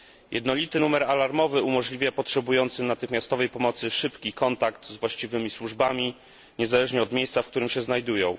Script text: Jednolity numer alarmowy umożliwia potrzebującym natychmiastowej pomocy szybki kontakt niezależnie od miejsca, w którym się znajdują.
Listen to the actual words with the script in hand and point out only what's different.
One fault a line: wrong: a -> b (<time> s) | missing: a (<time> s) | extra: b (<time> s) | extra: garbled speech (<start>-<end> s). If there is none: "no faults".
extra: z właściwymi służbami (4.9 s)